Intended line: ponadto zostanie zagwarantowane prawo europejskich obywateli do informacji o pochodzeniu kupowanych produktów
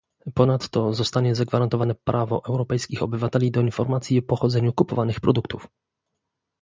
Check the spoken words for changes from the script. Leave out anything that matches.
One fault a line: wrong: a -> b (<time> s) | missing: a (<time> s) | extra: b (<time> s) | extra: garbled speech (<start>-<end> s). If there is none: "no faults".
no faults